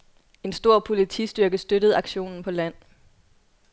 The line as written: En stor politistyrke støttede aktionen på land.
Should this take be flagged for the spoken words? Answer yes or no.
no